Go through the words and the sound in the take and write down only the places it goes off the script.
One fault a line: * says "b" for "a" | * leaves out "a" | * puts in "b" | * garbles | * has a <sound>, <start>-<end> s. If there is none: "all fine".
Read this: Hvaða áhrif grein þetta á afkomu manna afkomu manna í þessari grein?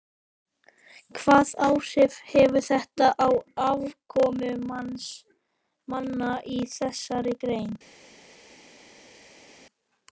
* says "hefur" for "grein"
* leaves out "afkomu manna"